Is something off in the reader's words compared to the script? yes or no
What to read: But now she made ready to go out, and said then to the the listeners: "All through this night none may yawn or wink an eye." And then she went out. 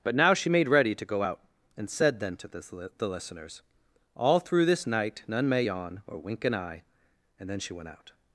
no